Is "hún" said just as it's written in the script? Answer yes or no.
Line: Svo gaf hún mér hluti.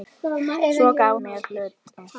no